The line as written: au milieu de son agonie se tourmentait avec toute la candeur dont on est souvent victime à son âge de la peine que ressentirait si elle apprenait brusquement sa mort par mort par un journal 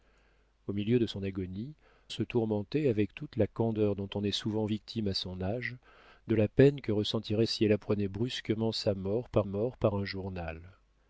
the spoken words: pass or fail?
pass